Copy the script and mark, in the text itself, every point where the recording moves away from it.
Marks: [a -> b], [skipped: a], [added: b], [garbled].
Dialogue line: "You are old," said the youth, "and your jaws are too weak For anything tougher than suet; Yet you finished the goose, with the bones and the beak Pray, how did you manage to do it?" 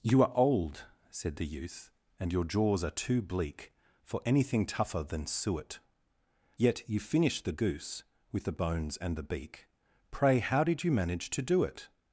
"You are old," said the youth, "and your jaws are too [weak -> bleak] For anything tougher than suet; Yet you finished the goose, with the bones and the beak Pray, how did you manage to do it?"